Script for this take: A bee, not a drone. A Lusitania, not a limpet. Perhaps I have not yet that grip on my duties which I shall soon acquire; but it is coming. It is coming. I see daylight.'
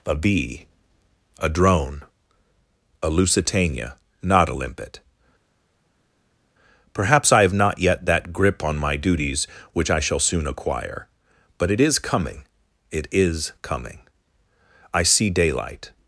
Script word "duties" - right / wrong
right